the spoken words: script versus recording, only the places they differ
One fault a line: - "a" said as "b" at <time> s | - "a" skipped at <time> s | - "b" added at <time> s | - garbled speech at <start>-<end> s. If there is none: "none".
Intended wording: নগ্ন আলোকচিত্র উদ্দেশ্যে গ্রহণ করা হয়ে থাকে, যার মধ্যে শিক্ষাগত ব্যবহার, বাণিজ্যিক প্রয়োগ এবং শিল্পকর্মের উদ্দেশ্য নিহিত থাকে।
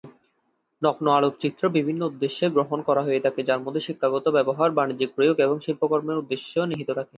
- "বিভিন্ন" added at 1.7 s